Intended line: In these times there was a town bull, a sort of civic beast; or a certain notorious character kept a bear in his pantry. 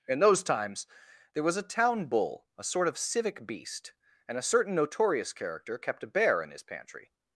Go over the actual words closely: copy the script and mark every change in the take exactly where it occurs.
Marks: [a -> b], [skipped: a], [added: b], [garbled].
In [these -> those] times there was a town bull, a sort of civic beast; [or -> and] a certain notorious character kept a bear in his pantry.